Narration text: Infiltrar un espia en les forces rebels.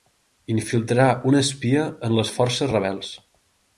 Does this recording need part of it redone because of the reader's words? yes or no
no